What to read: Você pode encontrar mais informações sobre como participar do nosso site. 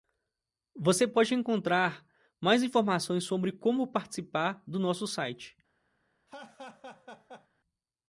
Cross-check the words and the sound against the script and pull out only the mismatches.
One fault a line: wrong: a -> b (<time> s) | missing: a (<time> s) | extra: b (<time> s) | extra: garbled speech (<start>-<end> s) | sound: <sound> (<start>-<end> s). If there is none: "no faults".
sound: laugh (6.3-7.5 s)